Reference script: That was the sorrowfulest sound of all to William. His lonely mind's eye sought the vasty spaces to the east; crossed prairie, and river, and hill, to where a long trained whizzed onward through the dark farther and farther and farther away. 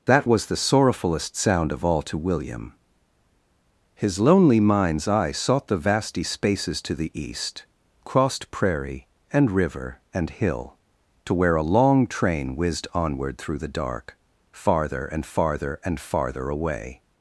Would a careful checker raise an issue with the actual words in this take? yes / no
yes